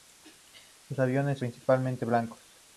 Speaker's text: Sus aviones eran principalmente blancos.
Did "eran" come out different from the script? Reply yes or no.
yes